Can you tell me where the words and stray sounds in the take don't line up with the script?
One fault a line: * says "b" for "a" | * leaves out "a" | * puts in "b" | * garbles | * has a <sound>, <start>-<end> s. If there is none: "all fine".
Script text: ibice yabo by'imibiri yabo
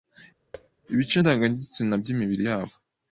* has a thud, 0.5-0.7 s
* says "ndangagitsina" for "yabo"